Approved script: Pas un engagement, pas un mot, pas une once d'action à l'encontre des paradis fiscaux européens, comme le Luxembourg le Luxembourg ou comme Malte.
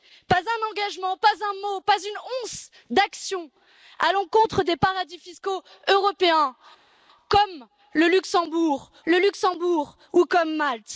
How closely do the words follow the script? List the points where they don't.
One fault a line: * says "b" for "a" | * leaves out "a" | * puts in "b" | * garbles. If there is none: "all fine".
all fine